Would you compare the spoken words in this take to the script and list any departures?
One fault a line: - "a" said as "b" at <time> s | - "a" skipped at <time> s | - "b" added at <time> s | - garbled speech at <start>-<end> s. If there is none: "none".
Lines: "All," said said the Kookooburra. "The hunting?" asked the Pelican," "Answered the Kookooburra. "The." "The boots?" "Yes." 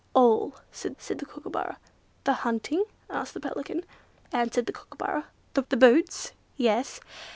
none